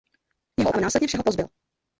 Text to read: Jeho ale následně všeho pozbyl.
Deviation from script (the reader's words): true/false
false